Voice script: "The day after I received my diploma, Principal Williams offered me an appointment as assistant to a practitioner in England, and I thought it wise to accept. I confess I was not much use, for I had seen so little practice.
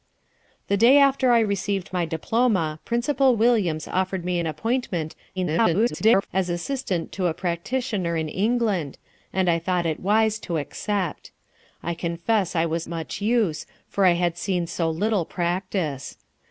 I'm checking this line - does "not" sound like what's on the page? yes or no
no